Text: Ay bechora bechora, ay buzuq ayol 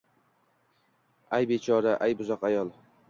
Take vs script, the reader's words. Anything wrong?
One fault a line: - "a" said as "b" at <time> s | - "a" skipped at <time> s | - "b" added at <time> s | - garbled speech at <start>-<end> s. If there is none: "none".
- "bechora" skipped at 1.9 s